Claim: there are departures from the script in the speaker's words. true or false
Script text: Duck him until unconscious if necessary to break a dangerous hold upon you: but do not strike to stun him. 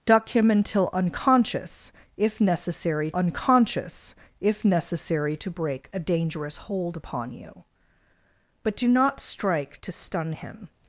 true